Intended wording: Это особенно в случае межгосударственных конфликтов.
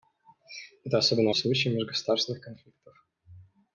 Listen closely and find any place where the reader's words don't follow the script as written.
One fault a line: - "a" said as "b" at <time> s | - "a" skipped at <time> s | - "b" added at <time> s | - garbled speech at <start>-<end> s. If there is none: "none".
none